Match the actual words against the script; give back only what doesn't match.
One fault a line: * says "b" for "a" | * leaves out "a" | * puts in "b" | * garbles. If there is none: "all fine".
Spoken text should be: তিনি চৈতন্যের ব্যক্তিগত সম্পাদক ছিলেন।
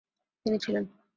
* leaves out "চৈতন্যের ব্যক্তিগত সম্পাদক"